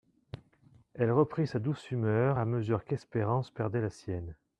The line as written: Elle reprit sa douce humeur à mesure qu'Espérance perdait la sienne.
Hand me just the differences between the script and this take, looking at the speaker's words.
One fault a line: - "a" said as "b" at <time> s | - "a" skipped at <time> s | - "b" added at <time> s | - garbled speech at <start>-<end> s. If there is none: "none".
none